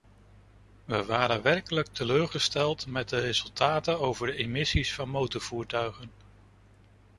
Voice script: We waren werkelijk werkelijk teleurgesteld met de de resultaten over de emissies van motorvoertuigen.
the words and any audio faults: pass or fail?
fail